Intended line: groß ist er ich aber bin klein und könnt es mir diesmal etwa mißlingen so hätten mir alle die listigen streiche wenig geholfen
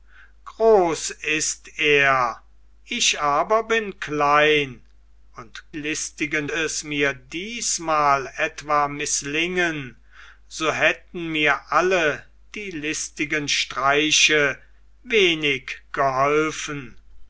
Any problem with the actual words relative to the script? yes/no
yes